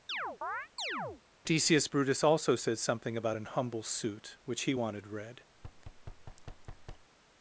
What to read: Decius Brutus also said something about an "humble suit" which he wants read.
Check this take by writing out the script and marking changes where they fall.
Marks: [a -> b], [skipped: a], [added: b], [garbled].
Decius Brutus also said something about an "humble suit" which he [wants -> wanted] read.